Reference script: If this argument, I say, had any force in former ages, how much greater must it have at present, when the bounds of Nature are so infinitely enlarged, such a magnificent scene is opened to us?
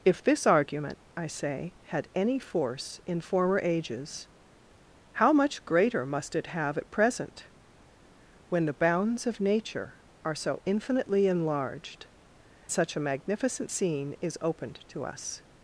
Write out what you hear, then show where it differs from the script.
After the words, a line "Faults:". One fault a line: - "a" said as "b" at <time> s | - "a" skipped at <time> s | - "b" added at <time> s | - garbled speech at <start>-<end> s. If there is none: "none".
If this argument, I say, had any force in former ages, how much greater must it have at present, when the bounds of Nature are so infinitely enlarged, such a magnificent scene is opened to us?
Faults:
none